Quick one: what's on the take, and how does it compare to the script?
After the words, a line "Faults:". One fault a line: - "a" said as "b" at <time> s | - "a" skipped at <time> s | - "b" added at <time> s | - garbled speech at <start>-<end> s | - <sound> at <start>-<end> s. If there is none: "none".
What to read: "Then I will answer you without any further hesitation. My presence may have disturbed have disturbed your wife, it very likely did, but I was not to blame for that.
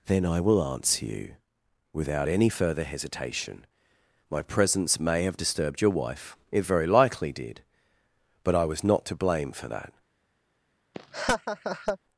"Then I will answer you without any further hesitation. My presence may have disturbed your wife, it very likely did, but I was not to blame for that.
Faults:
- "have disturbed" skipped at 5.8 s
- laugh at 10.9-12.0 s